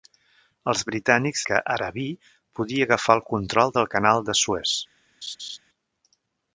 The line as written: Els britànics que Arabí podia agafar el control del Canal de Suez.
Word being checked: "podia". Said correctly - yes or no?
yes